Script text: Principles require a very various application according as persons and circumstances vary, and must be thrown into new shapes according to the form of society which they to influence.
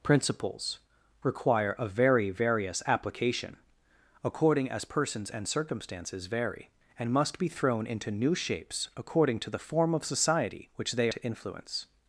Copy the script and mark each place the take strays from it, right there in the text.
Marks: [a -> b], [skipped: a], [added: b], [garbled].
Principles require a very various application according as persons and circumstances vary, and must be thrown into new shapes according to the form of society which they to influence.